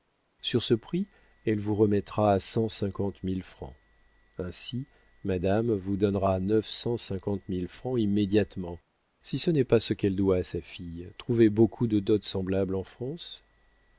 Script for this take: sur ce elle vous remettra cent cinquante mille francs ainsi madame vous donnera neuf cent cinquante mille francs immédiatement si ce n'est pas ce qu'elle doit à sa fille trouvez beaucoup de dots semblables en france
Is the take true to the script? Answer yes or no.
no